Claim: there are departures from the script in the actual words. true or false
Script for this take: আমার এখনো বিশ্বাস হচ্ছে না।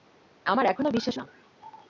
true